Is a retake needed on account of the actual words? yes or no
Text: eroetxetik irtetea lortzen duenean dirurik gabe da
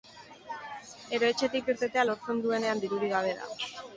no